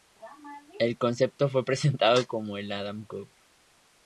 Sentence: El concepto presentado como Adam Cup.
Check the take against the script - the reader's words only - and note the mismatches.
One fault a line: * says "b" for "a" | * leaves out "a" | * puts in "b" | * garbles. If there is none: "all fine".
* puts in "fue"
* puts in "el"